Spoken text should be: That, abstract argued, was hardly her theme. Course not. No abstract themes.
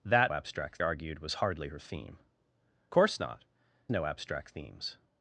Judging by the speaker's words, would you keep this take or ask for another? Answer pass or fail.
pass